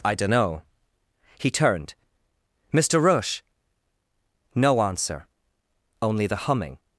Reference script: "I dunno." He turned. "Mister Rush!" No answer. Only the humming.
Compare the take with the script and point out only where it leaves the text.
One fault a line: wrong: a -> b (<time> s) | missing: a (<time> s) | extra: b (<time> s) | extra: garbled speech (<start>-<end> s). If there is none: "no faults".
no faults